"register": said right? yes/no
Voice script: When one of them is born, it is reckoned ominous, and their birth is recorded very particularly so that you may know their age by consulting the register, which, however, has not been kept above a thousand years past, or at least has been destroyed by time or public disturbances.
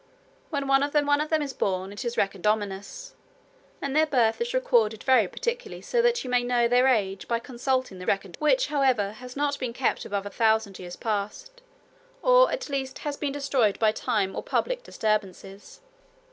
no